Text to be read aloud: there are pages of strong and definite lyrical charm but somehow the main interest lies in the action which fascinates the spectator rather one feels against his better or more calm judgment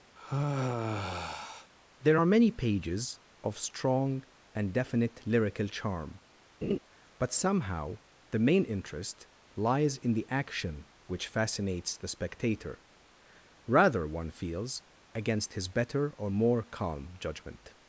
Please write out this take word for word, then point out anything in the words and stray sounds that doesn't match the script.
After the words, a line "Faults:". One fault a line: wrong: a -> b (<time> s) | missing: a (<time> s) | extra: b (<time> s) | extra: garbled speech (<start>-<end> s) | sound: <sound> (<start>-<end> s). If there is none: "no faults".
there are many pages of strong and definite lyrical charm but somehow the main interest lies in the action which fascinates the spectator rather one feels against his better or more calm judgment
Faults:
sound: sigh (0.2-1.7 s)
extra: many (2.3 s)
sound: laugh (6.6-6.8 s)